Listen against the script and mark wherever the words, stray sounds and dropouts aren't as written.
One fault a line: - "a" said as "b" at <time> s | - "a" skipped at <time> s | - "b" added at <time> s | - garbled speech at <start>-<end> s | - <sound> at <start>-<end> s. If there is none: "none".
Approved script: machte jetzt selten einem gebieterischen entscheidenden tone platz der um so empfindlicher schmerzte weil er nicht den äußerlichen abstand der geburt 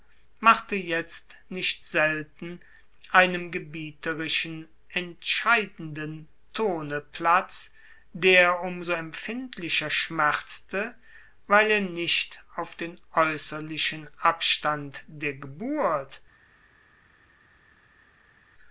- "nicht" added at 1.5 s
- "auf" added at 12.6 s